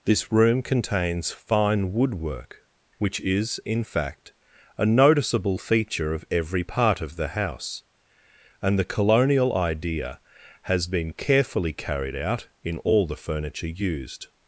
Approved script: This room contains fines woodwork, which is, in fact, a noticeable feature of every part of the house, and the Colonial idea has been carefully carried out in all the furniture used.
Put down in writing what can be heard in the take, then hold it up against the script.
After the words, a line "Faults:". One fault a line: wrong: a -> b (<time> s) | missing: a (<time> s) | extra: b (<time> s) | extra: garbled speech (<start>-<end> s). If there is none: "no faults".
This room contains fine woodwork, which is, in fact, a noticeable feature of every part of the house, and the Colonial idea has been carefully carried out in all the furniture used.
Faults:
wrong: fines -> fine (1.3 s)